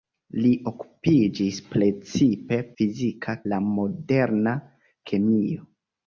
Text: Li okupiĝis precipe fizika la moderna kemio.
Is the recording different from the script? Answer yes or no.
no